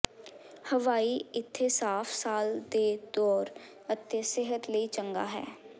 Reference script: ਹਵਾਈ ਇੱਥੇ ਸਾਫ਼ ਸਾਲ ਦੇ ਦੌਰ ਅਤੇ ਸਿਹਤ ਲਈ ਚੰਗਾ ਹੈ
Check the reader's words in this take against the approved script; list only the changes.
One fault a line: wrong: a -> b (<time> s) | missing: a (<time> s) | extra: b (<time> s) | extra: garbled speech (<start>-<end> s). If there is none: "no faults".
no faults